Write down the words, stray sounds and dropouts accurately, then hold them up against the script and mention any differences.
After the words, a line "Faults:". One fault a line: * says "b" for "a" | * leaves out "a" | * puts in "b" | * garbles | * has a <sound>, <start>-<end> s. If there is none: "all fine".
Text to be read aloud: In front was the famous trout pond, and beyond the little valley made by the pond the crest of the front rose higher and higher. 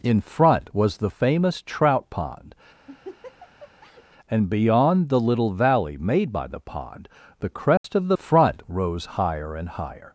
In front was the famous trout pond, and beyond the little valley made by the pond the crest of the front rose higher and higher.
Faults:
* has a laugh, 2.9-4.0 s
* has a dropout, 7.8-7.8 s